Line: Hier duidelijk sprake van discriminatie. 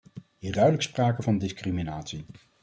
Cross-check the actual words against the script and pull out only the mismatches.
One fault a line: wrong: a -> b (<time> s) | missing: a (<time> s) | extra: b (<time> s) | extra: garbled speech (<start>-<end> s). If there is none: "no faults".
no faults